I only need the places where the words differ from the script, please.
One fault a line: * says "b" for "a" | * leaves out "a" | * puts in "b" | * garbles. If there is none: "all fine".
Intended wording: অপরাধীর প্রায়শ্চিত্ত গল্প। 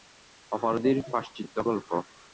all fine